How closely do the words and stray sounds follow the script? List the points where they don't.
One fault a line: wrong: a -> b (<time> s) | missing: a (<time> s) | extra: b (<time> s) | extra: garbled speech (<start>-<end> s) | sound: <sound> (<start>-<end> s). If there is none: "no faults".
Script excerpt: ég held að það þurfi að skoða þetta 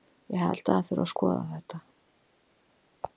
no faults